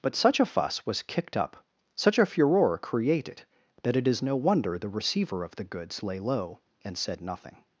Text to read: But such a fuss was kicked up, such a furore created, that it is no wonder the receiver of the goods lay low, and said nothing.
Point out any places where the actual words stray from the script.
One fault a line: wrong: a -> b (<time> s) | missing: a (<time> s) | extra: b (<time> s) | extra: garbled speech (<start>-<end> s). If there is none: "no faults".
no faults